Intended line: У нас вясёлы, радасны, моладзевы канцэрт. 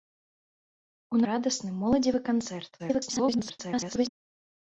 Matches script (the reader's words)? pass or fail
fail